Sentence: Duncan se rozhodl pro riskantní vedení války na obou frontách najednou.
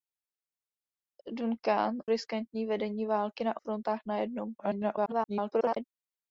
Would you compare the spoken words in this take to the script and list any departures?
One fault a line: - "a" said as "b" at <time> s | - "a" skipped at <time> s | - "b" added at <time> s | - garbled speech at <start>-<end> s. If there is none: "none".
- "se rozhodl pro" skipped at 2.0 s
- "obou" skipped at 3.6 s
- garbled speech at 4.6-5.8 s